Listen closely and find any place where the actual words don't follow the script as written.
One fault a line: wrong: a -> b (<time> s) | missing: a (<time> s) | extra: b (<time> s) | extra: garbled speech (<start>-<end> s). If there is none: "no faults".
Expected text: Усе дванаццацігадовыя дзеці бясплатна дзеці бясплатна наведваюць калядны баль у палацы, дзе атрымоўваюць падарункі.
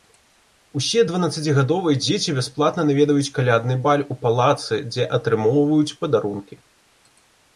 missing: дзеці бясплатна (2.9 s)